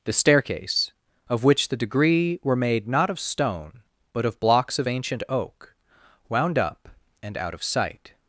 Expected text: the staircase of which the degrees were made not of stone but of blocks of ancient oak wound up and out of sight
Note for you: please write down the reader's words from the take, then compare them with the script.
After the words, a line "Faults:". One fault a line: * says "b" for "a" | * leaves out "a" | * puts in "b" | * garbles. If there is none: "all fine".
the staircase of which the degree were made not of stone but of blocks of ancient oak wound up and out of sight
Faults:
* says "degree" for "degrees"